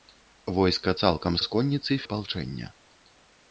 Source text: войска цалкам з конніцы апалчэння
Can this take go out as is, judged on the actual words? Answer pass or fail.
pass